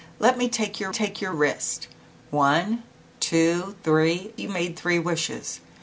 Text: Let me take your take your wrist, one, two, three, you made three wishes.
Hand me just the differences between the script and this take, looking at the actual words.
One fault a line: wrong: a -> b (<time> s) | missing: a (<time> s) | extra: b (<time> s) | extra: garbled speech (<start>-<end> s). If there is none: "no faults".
no faults